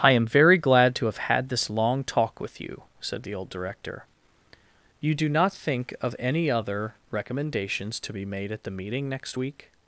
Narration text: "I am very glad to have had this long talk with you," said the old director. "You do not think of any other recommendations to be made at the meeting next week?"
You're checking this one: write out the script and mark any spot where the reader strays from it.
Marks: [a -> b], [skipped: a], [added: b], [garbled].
"I am very glad to have had this long talk with you," said the old director. "You do not think of any other recommendations to be made at the meeting next week?"